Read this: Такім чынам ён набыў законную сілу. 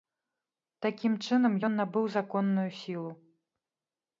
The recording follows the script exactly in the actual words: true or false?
true